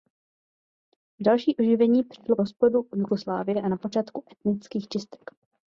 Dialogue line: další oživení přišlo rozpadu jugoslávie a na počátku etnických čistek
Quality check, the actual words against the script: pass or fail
pass